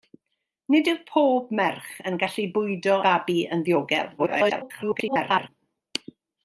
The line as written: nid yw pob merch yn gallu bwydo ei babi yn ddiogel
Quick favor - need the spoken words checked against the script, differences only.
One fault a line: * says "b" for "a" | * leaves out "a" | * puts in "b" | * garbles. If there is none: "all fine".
* leaves out "ei"
* garbles